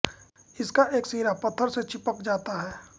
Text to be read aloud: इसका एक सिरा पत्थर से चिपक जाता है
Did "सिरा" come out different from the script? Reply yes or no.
no